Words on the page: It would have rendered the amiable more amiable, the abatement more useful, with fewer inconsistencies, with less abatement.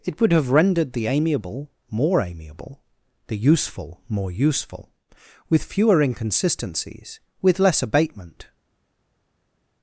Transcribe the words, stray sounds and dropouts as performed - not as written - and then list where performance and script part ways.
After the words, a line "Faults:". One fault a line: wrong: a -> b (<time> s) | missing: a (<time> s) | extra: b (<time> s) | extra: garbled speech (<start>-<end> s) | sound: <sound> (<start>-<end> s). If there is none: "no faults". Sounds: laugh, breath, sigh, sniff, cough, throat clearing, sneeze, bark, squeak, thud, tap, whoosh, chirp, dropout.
It would have rendered the amiable more amiable, the useful more useful, with fewer inconsistencies, with less abatement.
Faults:
wrong: abatement -> useful (3.4 s)